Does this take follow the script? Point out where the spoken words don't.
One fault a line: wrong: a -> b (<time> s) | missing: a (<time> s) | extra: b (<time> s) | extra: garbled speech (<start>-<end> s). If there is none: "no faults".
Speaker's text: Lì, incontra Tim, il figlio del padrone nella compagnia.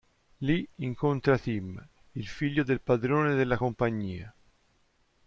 wrong: nella -> della (3.4 s)